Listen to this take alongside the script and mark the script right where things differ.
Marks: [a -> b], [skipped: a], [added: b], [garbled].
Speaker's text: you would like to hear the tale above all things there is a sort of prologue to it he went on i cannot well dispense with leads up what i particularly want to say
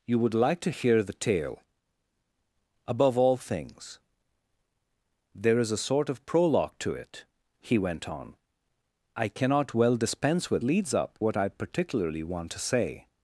you would like to hear the tale above all things there is a sort of prologue to it he went on i cannot well dispense with leads up what i particularly want to say